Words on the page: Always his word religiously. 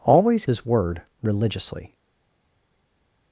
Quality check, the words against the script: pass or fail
pass